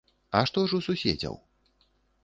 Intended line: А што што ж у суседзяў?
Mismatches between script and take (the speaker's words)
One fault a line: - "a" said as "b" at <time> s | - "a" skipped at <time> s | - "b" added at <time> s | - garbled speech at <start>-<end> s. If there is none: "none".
- "што" skipped at 0.6 s